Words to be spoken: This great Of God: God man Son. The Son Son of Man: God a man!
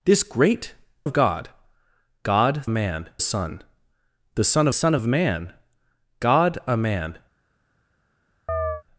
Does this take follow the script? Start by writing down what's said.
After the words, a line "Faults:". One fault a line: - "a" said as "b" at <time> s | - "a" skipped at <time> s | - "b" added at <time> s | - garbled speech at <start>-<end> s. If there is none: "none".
This great Of God: God man Son. The Son Son of Man: God a man!
Faults:
none